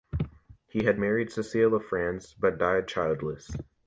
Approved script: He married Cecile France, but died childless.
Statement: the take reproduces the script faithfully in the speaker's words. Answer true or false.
false